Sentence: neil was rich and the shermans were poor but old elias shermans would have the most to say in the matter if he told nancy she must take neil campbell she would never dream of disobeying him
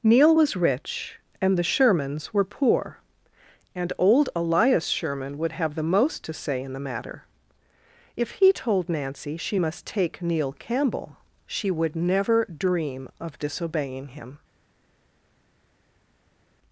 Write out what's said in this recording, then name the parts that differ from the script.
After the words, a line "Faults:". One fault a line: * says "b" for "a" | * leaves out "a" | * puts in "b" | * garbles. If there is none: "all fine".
neil was rich and the shermans were poor and old elias sherman would have the most to say in the matter if he told nancy she must take neil campbell she would never dream of disobeying him
Faults:
* says "and" for "but"
* says "sherman" for "shermans"